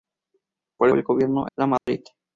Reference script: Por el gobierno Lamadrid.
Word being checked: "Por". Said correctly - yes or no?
yes